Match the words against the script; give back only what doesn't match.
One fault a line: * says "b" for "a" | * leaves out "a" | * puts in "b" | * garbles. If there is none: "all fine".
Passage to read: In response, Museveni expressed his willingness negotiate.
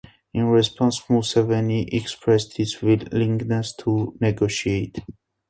* puts in "to"